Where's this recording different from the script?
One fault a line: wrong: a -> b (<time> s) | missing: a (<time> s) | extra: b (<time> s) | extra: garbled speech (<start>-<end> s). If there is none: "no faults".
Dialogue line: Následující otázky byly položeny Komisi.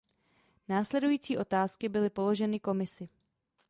no faults